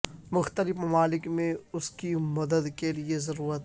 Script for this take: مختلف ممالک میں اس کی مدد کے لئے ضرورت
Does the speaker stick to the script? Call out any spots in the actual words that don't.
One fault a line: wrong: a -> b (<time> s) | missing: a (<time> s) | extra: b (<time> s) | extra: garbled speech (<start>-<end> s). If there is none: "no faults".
no faults